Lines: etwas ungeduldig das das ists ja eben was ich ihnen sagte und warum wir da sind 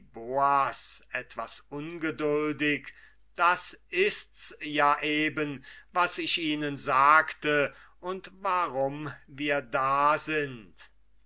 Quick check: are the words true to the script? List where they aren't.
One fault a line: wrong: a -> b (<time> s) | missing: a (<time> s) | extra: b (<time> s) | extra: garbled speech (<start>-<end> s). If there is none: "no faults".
missing: das (3.8 s)